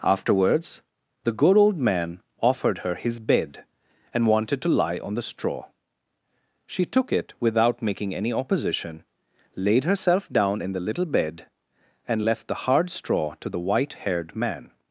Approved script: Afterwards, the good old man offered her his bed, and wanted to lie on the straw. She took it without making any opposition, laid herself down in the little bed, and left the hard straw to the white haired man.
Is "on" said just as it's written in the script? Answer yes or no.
yes